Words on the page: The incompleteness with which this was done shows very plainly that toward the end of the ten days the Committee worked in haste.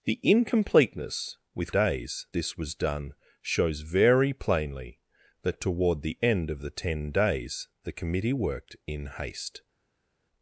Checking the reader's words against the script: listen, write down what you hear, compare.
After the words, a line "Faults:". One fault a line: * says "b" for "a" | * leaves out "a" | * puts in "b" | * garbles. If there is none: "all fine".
The incompleteness with days this was done shows very plainly that toward the end of the ten days the Committee worked in haste.
Faults:
* says "days" for "which"